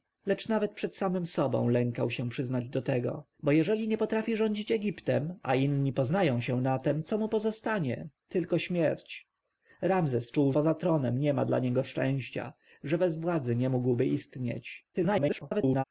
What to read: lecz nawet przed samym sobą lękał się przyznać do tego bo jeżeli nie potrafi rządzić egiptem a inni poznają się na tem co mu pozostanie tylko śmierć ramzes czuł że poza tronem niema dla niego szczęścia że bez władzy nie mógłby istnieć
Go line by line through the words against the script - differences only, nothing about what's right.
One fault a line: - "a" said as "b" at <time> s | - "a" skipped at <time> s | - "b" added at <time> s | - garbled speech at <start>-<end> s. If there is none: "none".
- "że" skipped at 10.5 s
- garbled speech at 14.9-15.8 s